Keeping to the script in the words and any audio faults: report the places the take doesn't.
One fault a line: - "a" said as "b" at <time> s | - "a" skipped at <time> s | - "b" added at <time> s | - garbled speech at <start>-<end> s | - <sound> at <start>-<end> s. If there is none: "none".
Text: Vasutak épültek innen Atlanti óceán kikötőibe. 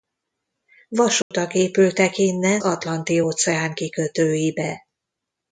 - dropout at 1.2-1.3 s